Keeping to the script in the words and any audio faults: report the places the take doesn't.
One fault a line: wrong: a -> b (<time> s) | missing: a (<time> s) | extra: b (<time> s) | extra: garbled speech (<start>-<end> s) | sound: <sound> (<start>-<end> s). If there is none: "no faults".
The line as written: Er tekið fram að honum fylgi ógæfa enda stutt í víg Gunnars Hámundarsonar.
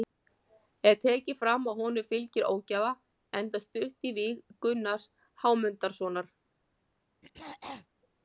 sound: throat clearing (7.2-7.9 s)